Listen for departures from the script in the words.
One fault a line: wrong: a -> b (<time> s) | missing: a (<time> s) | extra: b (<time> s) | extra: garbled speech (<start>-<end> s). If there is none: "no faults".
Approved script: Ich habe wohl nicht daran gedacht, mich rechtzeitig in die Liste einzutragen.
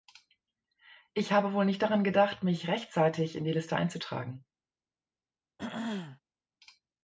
no faults